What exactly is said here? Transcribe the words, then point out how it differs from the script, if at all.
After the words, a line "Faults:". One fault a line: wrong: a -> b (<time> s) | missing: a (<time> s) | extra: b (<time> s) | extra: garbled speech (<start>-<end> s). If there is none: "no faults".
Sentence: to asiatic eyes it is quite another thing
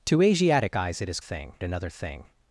to asiatic eyes it is thing another thing
Faults:
wrong: quite -> thing (1.2 s)